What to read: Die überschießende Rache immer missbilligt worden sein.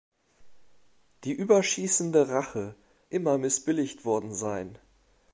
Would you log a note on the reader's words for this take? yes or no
no